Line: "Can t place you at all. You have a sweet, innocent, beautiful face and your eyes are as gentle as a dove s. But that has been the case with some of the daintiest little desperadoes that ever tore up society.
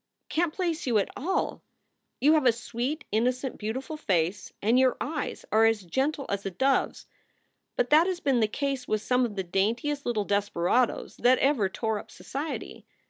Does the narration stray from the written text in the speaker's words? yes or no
no